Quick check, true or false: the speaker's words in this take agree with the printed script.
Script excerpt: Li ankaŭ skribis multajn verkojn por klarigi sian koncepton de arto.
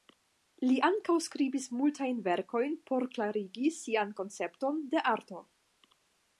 true